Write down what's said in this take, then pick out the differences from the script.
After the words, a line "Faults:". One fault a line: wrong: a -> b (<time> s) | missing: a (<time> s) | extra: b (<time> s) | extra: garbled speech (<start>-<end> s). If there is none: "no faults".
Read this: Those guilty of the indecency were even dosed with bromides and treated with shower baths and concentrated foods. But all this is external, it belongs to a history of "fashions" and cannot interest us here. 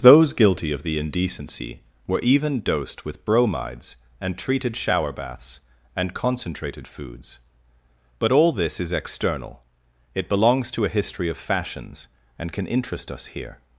Those guilty of the indecency were even dosed with bromides and treated shower baths and concentrated foods. But all this is external, it belongs to a history of "fashions" and can interest us here.
Faults:
missing: with (4.8 s)
wrong: cannot -> can (12.5 s)